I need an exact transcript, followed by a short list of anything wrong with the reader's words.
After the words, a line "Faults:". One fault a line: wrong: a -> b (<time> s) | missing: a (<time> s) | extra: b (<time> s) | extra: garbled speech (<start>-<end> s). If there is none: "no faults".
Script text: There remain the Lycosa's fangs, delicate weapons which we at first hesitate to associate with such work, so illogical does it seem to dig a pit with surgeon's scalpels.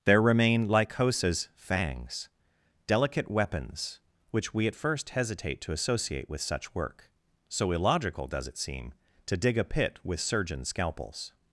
There remain Lycosa's fangs, delicate weapons which we at first hesitate to associate with such work, so illogical does it seem to dig a pit with surgeon's scalpels.
Faults:
missing: the (0.7 s)